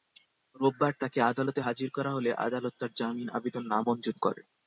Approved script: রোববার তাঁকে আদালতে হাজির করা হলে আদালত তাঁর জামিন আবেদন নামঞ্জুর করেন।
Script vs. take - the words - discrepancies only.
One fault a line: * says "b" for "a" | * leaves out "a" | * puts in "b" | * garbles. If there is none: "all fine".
all fine